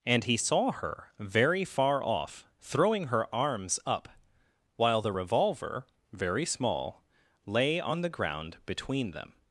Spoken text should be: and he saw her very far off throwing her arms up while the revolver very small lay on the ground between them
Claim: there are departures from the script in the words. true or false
false